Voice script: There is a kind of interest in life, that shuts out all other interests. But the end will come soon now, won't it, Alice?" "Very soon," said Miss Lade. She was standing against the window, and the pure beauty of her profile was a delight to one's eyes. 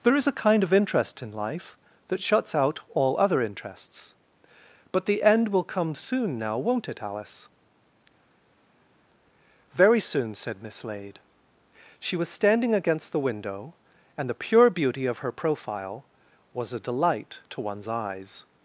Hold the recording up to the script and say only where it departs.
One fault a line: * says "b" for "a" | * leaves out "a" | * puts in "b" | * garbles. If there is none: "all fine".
all fine